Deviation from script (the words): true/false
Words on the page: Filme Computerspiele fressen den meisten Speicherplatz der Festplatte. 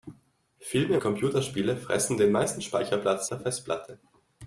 false